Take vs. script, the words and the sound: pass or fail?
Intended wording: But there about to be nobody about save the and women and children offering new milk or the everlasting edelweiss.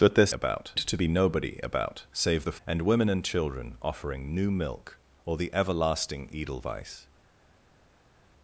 pass